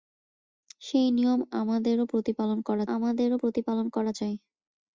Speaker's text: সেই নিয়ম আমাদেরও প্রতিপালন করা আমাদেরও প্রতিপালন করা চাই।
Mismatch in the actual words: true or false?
false